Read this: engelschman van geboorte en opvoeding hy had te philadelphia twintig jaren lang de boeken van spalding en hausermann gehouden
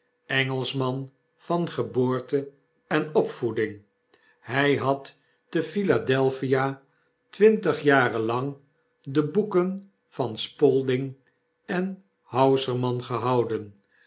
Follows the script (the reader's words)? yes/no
yes